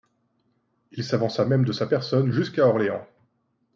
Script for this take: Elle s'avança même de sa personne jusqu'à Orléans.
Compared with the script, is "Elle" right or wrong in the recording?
wrong